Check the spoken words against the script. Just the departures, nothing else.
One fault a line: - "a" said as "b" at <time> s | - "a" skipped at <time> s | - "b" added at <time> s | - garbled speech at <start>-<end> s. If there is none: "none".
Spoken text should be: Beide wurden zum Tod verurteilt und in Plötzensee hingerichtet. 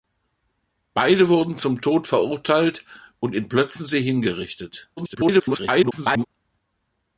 - garbled speech at 5.0-6.2 s